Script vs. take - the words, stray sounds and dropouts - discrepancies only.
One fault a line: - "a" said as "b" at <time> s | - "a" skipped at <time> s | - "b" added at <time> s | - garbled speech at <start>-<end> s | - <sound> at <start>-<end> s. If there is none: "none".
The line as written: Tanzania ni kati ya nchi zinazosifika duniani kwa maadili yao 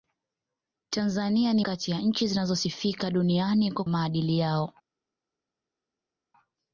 none